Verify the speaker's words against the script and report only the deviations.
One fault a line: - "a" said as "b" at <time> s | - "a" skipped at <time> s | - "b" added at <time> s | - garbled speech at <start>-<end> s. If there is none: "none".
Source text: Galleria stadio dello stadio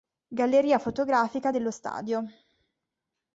- "stadio" said as "fotografica" at 0.8 s